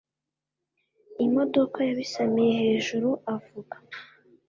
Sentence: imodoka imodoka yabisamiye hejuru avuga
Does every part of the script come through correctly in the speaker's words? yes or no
no